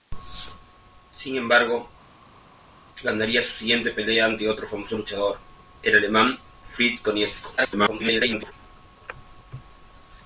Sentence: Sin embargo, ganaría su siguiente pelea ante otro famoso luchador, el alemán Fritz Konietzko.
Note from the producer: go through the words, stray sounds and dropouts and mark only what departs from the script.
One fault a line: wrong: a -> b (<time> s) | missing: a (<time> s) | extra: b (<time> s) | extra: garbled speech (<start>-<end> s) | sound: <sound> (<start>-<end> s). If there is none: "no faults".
extra: garbled speech (7.6-8.5 s)